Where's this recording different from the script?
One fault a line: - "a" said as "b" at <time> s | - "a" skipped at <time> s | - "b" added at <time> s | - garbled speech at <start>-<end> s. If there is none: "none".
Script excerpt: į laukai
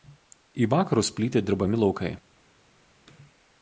- "vakarus plyti dirbami" added at 0.7 s